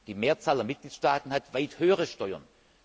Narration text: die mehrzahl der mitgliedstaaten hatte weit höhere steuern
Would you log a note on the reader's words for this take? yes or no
yes